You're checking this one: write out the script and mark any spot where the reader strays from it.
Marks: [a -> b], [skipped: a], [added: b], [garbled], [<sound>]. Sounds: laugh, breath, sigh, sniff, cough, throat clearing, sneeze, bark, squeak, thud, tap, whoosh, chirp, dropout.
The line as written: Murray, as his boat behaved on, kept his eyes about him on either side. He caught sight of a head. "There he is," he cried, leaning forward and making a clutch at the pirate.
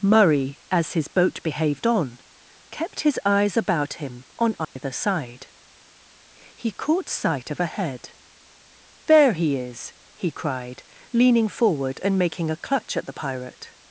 Murray, as his boat behaved on, kept his eyes about him on either [dropout] side. He caught sight of a head. "There he is," he cried, leaning forward and making a clutch at the pirate.